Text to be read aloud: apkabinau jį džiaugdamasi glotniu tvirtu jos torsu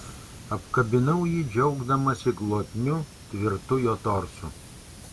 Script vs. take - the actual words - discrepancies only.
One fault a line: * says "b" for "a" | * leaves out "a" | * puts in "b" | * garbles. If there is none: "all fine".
* says "jo" for "jos"